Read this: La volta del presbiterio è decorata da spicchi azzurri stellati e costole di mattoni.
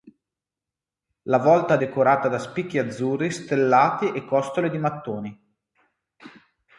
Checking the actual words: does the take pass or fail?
fail